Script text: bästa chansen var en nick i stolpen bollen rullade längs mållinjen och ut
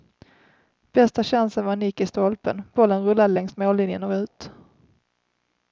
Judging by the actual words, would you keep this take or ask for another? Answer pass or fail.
pass